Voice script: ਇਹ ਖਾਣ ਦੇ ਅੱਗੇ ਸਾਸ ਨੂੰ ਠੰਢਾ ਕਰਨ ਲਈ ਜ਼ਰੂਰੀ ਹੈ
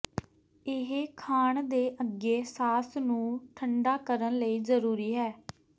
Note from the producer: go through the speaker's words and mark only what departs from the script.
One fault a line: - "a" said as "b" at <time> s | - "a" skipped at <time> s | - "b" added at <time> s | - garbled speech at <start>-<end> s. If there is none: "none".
none